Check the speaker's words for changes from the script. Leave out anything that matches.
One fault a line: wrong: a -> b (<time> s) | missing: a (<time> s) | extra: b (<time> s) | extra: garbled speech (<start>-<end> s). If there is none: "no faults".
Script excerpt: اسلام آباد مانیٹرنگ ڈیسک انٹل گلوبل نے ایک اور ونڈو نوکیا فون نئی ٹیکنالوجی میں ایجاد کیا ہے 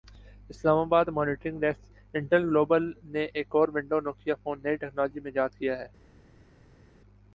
no faults